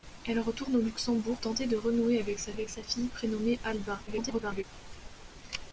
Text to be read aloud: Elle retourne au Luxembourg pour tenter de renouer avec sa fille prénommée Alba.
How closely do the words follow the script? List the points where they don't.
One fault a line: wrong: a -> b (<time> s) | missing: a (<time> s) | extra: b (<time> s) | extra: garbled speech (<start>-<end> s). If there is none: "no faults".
missing: pour (1.4 s)
extra: avec sa (2.5 s)
extra: garbled speech (4.1-4.6 s)